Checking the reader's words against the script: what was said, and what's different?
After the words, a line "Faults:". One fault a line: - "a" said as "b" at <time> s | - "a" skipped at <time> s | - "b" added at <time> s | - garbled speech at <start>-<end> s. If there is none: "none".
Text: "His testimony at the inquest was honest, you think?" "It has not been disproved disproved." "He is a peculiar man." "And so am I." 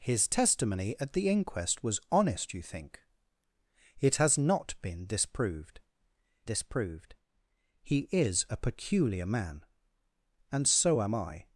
"His testimony at the inquest was honest, you think?" "It has not been disproved disproved." "He is a peculiar man." "And so am I."
Faults:
none